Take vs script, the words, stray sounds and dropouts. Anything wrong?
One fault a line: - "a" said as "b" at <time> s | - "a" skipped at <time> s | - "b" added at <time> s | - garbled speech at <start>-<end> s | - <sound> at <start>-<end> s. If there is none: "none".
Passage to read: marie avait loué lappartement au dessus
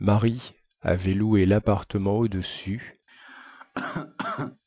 - cough at 3.1-4.6 s